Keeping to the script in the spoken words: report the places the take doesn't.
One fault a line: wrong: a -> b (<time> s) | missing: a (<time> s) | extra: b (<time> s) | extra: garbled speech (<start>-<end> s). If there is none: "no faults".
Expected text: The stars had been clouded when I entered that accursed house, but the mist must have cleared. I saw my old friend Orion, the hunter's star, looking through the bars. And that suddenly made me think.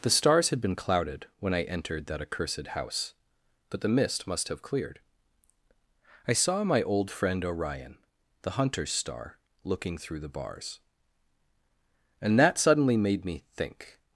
no faults